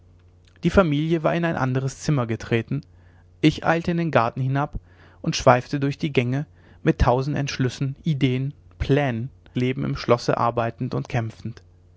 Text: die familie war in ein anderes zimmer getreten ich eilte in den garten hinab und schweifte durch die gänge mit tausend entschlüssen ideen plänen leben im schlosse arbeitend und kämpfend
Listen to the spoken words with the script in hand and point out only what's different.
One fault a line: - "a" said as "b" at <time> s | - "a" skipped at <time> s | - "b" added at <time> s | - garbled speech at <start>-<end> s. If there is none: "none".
none